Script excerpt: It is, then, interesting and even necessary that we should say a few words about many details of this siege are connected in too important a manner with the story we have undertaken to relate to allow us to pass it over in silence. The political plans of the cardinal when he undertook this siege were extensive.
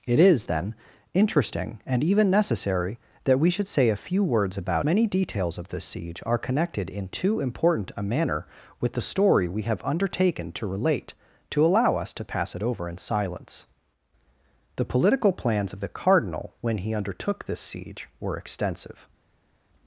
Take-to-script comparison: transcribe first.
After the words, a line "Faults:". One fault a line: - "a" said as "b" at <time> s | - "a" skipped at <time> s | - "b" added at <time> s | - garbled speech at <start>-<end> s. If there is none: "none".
It is, then, interesting and even necessary that we should say a few words about many details of this siege are connected in too important a manner with the story we have undertaken to relate to allow us to pass it over in silence. The political plans of the cardinal when he undertook this siege were extensive.
Faults:
none